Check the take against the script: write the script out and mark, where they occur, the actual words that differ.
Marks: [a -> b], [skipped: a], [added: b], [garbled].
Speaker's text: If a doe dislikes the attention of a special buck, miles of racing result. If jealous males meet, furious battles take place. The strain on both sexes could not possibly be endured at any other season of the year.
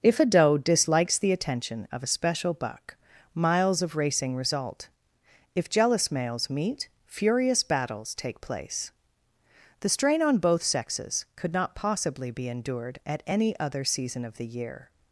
If a doe dislikes the attention of a special buck, miles of racing result. If jealous males meet, furious battles take place. The strain on both sexes could not possibly be endured at any other season of the year.